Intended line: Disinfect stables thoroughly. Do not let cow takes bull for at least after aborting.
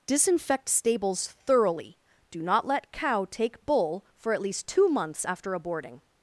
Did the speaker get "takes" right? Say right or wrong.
wrong